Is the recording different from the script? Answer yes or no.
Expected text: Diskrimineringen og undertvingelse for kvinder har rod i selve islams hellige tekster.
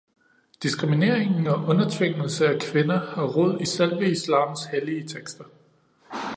yes